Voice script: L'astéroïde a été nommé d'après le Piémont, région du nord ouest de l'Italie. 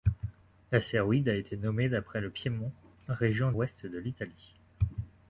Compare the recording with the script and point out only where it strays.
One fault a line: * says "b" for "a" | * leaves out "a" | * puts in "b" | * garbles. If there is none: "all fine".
* leaves out "du nord"